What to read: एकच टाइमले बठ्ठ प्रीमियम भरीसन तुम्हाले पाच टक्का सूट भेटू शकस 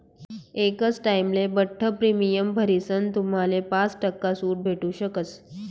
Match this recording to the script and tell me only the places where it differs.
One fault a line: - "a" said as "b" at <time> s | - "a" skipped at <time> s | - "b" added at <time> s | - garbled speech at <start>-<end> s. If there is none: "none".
none